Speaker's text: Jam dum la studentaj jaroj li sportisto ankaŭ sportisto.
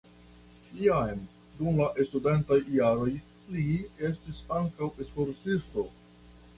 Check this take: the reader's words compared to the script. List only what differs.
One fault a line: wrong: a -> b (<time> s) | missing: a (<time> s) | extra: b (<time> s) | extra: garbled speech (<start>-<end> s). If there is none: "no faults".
wrong: sportisto -> estis (4.1 s)